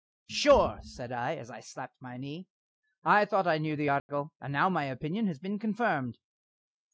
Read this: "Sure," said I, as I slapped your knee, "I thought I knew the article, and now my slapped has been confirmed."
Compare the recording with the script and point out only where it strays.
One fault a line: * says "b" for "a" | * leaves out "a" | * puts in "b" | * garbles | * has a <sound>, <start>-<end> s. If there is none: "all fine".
* says "my" for "your"
* has a dropout, 4.0-4.1 s
* says "opinion" for "slapped"